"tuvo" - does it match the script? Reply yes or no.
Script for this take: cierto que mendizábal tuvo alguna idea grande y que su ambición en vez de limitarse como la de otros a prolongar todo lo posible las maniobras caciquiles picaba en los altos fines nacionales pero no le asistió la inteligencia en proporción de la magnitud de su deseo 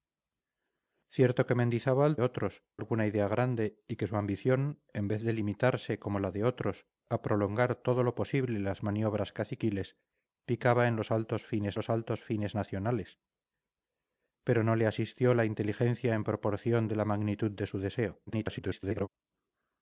no